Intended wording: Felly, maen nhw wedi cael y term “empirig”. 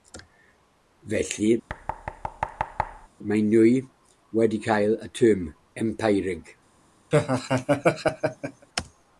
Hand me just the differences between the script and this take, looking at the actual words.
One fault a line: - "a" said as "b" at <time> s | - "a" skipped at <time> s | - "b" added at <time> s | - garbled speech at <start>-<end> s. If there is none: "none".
none